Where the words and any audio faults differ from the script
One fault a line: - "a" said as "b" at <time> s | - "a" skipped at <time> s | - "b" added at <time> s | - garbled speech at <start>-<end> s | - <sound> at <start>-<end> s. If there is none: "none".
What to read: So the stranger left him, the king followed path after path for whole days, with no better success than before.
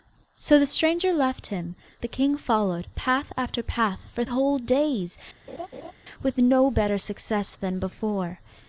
- laugh at 5.5-5.9 s